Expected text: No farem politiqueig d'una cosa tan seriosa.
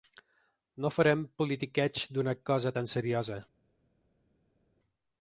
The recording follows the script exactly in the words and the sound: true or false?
true